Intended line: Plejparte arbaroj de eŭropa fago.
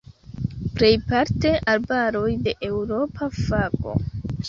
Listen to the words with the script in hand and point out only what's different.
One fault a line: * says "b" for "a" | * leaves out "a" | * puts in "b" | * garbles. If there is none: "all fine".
all fine